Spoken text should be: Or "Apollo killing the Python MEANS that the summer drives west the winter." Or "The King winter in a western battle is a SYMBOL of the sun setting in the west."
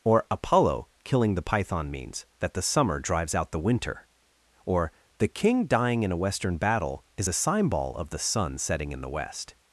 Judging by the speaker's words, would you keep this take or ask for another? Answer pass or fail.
fail